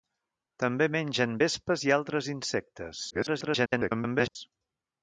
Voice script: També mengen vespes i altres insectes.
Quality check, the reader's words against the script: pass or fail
fail